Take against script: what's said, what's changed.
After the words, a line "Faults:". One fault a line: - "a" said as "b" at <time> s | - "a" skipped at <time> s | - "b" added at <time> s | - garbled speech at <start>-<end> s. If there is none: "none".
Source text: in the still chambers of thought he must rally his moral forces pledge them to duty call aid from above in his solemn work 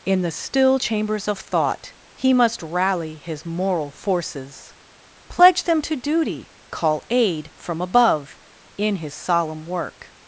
in the still chambers of thought he must rally his moral forces pledge them to duty call aid from above in his solemn work
Faults:
none